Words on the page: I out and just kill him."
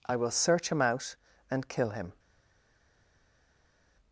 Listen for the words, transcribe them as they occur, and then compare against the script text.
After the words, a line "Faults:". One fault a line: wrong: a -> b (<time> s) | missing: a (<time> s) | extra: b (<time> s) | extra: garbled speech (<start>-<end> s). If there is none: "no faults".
I will search him out and kill him."
Faults:
extra: will search him (0.1 s)
missing: just (1.7 s)